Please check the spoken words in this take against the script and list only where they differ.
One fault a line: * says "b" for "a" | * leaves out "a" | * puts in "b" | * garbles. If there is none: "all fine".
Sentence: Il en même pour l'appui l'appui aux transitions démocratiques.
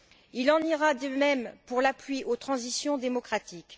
* puts in "ira de"
* leaves out "l'appui"